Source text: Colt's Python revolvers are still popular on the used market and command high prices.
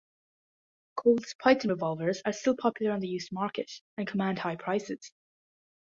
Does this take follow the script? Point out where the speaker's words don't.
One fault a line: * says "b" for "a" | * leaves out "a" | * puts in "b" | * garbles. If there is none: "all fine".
all fine